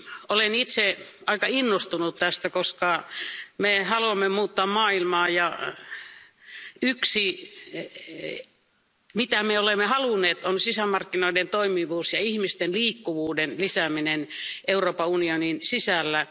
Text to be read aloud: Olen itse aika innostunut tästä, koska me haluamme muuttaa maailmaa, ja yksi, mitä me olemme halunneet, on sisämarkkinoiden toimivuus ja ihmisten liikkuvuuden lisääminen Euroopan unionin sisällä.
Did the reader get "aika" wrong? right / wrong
right